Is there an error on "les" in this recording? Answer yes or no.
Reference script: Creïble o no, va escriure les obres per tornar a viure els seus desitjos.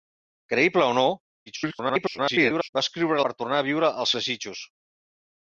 yes